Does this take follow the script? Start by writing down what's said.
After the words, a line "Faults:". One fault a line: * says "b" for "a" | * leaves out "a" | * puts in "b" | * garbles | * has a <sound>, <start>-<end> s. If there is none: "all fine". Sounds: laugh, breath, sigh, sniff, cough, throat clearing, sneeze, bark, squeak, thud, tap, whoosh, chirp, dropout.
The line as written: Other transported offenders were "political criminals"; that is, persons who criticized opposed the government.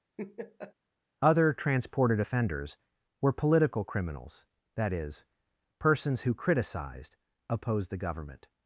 Other transported offenders were "political criminals"; that is, persons who criticized opposed the government.
Faults:
* has a laugh, 0.2-0.7 s